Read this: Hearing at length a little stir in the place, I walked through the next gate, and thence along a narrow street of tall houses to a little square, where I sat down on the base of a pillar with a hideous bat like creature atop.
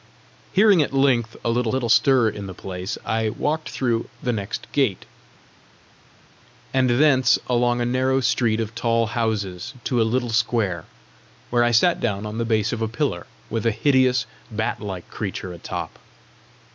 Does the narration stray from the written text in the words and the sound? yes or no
yes